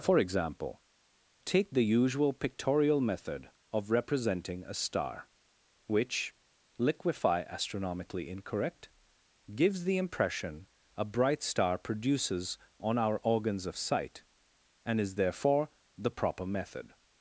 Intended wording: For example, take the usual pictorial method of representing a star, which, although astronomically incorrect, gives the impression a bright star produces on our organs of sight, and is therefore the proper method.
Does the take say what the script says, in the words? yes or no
no